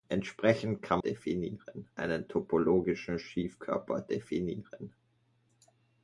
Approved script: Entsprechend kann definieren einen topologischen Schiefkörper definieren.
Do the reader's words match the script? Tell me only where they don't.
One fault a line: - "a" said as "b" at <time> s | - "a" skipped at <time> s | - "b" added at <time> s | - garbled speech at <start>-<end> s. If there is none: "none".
none